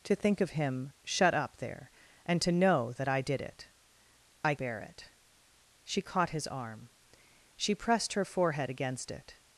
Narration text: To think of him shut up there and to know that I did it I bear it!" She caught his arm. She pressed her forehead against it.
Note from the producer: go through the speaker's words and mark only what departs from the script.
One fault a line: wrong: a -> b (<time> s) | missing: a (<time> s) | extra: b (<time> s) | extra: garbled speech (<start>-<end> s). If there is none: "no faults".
no faults